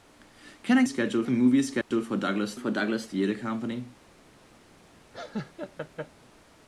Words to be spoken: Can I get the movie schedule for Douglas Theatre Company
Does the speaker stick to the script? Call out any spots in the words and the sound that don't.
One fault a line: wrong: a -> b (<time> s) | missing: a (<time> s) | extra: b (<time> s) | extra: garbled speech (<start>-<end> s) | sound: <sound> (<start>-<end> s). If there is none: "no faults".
wrong: get -> schedule (0.8 s)
sound: dropout (1.8-1.9 s)
extra: for Douglas (2.6 s)
sound: laugh (5.1-6.1 s)